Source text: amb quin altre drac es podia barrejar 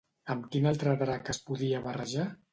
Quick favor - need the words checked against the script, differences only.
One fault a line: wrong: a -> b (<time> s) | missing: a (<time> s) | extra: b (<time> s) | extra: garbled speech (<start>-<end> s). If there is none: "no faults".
no faults